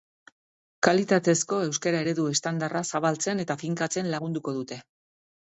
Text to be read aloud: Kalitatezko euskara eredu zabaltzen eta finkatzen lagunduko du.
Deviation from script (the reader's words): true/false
true